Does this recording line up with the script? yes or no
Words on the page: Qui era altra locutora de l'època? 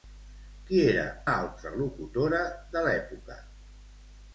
yes